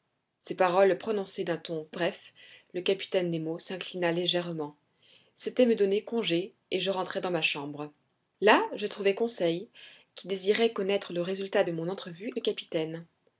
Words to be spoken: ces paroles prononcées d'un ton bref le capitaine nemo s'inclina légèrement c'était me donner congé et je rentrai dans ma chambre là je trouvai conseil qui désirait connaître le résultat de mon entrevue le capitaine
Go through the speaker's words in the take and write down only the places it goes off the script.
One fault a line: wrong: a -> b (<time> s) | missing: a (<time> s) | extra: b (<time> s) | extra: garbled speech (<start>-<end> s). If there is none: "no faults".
no faults